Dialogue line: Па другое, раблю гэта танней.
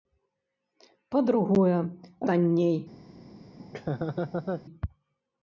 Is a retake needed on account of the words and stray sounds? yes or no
yes